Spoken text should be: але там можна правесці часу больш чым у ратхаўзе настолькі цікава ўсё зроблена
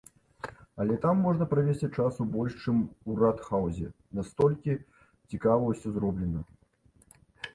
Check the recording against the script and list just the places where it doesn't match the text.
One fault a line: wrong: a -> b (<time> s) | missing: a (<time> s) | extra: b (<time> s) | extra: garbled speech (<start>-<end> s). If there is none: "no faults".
no faults